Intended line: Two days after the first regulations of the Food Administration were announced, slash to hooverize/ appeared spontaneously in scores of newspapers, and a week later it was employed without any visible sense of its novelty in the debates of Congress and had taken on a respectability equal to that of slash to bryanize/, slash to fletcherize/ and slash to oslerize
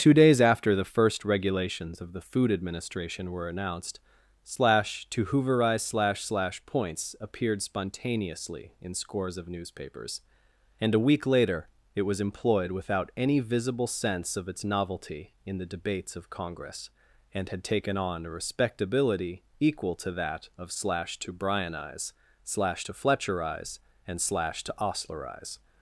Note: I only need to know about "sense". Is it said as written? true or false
true